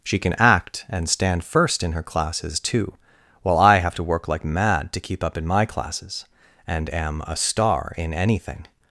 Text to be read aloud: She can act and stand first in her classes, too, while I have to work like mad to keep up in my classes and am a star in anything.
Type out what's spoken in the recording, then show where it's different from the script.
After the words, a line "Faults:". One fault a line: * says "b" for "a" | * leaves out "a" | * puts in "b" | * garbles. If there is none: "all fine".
She can act and stand first in her classes, too, while I have to work like mad to keep up in my classes and am a star in anything.
Faults:
all fine